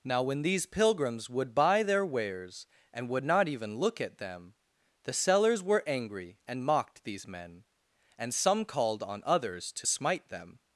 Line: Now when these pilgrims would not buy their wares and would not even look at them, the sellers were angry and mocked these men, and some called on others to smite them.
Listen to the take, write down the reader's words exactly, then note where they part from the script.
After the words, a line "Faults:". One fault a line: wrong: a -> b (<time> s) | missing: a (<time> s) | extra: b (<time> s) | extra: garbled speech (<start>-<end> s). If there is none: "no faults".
Now when these pilgrims would buy their wares and would not even look at them, the sellers were angry and mocked these men, and some called on others to smite them.
Faults:
missing: not (1.5 s)